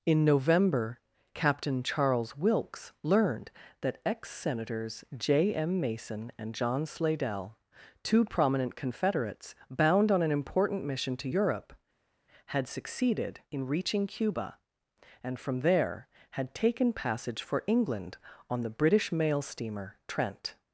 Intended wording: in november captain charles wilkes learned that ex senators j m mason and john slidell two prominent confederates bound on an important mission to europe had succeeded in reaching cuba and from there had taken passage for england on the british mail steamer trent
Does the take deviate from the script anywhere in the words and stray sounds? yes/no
no